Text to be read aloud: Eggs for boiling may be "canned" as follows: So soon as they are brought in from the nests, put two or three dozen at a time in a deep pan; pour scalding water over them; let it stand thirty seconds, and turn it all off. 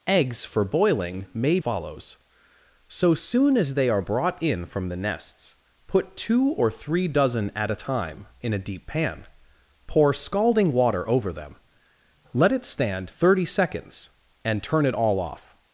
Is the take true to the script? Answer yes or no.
no